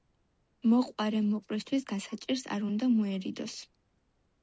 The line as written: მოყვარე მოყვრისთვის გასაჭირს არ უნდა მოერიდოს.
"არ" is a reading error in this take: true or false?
false